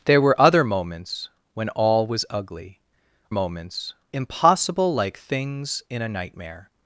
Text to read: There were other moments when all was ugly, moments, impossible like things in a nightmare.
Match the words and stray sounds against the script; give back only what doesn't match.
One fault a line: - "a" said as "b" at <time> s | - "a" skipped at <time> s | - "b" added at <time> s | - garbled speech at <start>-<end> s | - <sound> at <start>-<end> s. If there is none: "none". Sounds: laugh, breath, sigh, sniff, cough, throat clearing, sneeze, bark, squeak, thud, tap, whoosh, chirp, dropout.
none